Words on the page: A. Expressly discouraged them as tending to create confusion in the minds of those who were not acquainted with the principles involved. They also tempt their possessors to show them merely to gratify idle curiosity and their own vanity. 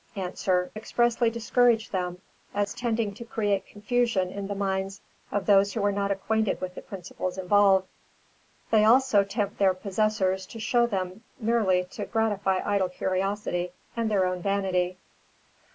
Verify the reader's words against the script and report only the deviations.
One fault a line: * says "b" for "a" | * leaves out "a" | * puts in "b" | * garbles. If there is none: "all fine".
all fine